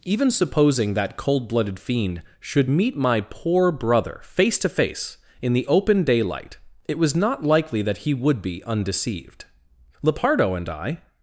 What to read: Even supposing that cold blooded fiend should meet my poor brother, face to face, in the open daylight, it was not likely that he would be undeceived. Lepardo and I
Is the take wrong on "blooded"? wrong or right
right